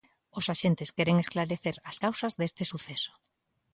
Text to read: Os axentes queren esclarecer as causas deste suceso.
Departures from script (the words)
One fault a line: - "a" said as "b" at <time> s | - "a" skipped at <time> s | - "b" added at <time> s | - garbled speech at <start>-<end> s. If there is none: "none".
none